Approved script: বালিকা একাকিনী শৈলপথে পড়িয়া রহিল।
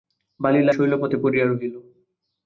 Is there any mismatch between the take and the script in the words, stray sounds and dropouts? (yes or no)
yes